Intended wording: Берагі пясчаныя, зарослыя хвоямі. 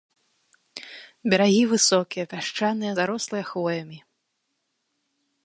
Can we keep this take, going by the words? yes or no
no